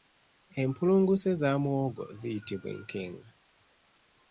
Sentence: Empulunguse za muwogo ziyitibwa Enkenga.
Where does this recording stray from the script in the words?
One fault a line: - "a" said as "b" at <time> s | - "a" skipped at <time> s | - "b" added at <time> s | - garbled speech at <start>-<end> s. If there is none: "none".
none